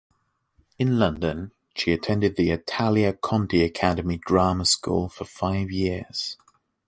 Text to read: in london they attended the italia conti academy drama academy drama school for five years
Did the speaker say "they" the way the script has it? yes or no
no